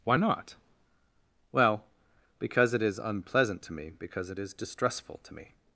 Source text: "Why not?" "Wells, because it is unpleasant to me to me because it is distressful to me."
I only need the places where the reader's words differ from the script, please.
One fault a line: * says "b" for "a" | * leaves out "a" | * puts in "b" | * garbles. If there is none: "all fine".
* says "Well" for "Wells"
* leaves out "to me"